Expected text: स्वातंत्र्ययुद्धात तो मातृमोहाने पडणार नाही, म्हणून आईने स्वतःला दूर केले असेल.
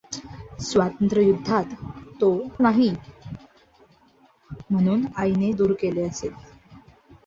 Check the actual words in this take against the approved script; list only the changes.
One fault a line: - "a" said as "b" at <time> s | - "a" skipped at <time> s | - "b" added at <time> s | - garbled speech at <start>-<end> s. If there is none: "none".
- "मातृमोहाने पडणार" skipped at 2.3 s
- "स्वतःला" skipped at 5.5 s